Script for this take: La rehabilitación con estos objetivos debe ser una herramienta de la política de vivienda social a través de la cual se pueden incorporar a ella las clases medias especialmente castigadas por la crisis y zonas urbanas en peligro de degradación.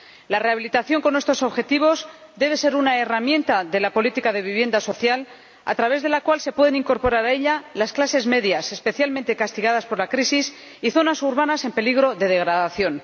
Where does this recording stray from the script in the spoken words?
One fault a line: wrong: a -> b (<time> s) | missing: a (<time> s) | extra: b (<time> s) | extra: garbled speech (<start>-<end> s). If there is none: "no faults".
no faults